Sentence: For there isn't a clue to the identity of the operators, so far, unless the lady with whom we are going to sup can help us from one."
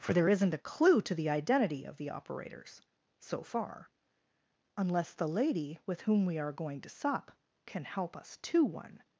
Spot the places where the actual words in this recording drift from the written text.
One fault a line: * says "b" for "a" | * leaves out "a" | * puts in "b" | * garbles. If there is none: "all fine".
* says "to" for "from"